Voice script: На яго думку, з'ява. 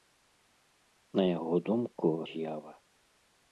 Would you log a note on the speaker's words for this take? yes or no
no